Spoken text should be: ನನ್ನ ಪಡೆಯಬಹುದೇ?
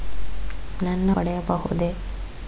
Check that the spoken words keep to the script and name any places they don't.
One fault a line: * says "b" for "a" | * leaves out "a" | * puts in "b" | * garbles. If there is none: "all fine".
all fine